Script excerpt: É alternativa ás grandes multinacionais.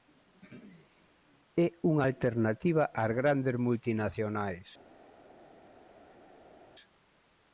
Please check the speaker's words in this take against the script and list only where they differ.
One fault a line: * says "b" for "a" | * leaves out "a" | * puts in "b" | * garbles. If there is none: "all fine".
* puts in "unha"